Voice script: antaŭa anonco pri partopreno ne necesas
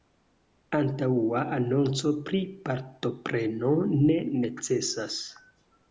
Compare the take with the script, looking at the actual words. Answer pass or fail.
pass